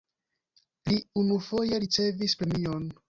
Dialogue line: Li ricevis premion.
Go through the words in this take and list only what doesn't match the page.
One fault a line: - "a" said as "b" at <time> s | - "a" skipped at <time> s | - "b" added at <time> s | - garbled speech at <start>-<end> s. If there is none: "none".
- "unufoje" added at 1.2 s